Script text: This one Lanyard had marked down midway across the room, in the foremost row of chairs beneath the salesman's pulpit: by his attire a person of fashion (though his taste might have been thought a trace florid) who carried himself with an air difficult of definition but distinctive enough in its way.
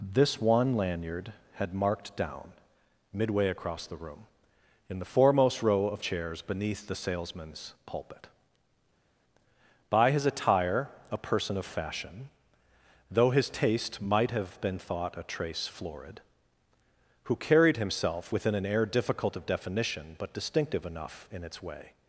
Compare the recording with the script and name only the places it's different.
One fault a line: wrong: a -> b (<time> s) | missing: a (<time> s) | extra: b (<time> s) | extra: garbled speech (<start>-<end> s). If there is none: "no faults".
wrong: with -> within (18.3 s)